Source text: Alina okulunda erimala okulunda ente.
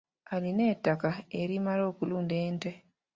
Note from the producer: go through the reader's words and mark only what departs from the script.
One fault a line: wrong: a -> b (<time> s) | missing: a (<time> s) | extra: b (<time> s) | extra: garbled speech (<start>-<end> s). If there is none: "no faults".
wrong: okulunda -> ettaka (0.7 s)